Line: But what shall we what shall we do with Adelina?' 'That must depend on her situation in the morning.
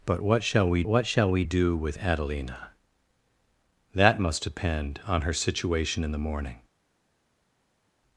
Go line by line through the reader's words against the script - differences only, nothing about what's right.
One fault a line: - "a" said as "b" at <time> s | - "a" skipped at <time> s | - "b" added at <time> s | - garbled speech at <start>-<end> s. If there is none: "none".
none